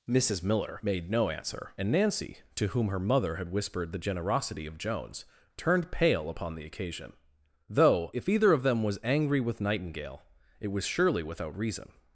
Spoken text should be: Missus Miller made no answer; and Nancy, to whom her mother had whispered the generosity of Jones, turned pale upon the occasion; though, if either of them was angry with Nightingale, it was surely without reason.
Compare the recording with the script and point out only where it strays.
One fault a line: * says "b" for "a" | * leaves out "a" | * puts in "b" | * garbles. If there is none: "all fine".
all fine